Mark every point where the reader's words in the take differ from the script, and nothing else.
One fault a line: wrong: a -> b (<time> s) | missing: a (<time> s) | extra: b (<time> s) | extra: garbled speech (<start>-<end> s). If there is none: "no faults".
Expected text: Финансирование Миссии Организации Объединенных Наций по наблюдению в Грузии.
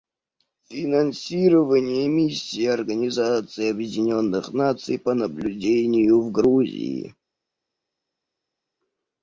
no faults